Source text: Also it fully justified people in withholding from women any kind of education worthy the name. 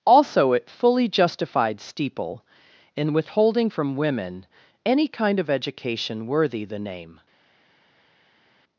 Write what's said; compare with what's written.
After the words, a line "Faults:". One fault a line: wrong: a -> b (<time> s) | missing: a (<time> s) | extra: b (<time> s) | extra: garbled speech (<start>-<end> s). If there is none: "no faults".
Also it fully justified steeple in withholding from women any kind of education worthy the name.
Faults:
wrong: people -> steeple (1.8 s)